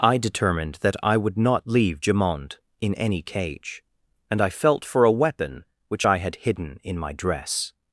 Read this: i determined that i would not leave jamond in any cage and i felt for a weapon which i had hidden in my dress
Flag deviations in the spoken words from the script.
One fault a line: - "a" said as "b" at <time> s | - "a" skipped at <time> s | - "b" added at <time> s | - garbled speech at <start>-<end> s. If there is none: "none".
none